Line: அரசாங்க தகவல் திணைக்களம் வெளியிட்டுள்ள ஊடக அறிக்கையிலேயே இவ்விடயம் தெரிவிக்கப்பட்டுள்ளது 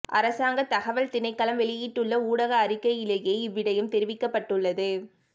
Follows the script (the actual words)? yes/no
yes